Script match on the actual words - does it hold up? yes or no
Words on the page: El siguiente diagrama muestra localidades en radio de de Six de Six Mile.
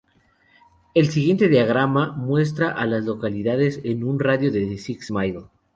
no